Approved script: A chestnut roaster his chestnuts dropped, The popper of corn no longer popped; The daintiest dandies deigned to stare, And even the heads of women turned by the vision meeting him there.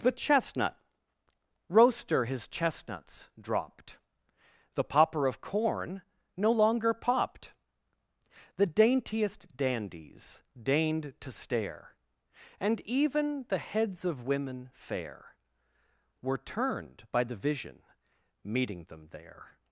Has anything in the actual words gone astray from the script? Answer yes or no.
yes